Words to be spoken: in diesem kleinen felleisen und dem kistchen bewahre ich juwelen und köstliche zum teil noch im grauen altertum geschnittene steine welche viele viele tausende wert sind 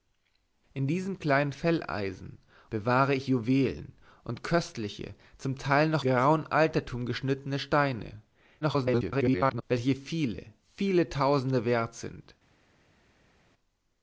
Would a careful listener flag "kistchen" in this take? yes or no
yes